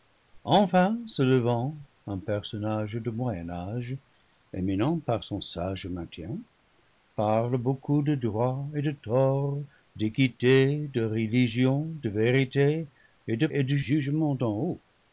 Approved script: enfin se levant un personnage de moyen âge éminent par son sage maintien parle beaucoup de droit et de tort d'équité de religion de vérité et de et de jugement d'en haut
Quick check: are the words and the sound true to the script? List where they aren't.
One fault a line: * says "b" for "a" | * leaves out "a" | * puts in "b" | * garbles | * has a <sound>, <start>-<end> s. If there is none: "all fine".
all fine